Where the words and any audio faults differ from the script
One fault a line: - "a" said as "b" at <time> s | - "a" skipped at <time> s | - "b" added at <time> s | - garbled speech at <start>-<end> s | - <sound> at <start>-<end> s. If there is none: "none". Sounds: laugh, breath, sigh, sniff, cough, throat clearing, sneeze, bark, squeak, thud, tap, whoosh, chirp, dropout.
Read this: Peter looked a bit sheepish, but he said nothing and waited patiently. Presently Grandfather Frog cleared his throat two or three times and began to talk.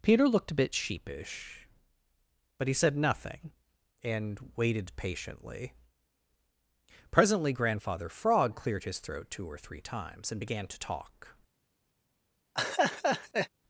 - laugh at 12.5-13.5 s